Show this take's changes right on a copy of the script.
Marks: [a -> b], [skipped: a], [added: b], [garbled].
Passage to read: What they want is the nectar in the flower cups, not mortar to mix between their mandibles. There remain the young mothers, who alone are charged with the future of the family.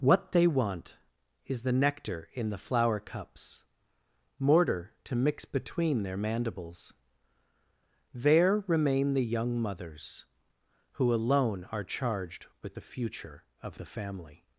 What they want is the nectar in the flower cups, [skipped: not] mortar to mix between their mandibles. There remain the young mothers, who alone are charged with the future of the family.